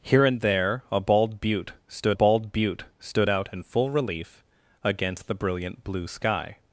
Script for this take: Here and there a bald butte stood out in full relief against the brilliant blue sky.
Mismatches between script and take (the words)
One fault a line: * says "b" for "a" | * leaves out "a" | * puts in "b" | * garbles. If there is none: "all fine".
* puts in "bald butte stood"